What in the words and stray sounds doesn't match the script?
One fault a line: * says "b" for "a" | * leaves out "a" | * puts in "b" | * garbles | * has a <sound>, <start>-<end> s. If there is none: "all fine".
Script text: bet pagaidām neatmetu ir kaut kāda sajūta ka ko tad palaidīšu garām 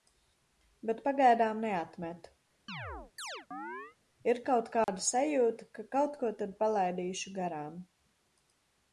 * has a chirp, 2.7-4.0 s
* has a dropout, 4.8-4.9 s
* puts in "kaut"